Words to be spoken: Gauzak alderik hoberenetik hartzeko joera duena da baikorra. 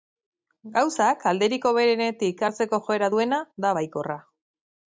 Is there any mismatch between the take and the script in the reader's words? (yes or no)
no